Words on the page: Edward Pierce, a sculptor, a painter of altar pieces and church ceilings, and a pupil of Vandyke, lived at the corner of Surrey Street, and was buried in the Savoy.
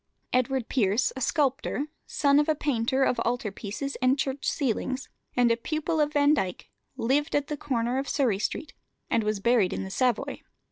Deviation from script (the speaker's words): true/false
true